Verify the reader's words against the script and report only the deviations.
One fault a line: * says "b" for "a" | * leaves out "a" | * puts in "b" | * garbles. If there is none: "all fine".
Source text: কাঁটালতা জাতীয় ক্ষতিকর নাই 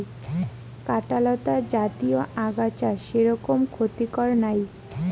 * puts in "আগাছা সেরকম"